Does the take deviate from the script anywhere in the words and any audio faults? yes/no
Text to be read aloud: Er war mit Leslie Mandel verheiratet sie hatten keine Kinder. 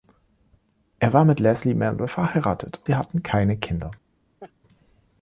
yes